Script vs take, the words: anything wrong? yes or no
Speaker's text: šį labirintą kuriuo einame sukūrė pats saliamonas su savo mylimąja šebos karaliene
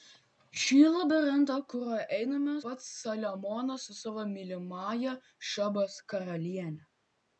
yes